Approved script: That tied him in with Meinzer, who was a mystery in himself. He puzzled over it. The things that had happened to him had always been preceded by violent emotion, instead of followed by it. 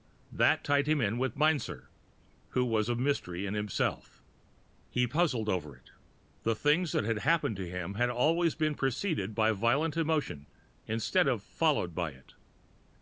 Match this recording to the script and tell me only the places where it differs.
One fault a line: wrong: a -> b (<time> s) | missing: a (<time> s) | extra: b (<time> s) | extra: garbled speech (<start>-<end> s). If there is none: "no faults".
no faults